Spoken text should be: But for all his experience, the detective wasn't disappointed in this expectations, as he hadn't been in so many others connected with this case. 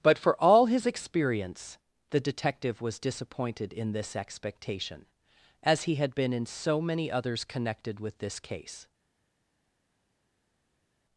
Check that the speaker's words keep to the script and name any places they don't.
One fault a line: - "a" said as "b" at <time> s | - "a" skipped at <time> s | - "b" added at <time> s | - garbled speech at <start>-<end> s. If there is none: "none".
- "wasn't" said as "was" at 2.8 s
- "expectations" said as "expectation" at 4.2 s
- "hadn't" said as "had" at 6.0 s